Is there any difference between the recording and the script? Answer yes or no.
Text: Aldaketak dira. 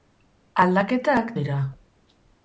no